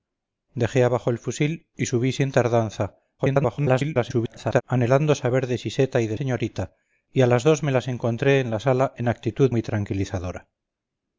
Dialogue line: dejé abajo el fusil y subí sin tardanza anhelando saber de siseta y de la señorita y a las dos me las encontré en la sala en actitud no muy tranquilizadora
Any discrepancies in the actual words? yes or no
yes